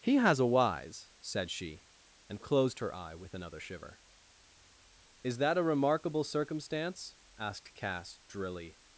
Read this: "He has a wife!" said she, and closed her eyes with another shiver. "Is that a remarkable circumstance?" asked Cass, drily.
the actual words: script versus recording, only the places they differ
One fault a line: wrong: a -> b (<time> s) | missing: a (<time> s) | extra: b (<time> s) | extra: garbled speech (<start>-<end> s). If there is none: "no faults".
wrong: wife -> wise (0.5 s)
wrong: eyes -> eye (2.9 s)